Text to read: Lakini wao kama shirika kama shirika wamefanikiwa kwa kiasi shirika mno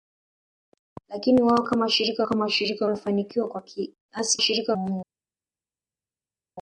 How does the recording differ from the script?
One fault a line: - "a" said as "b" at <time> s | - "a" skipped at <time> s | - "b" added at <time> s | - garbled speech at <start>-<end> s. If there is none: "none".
none